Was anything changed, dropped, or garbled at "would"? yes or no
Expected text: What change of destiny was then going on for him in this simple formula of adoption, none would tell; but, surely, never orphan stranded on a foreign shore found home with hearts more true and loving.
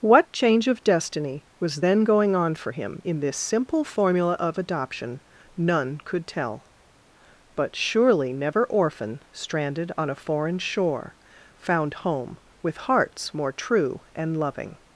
yes